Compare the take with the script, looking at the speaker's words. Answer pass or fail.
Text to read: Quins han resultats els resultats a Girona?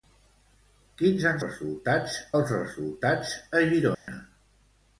pass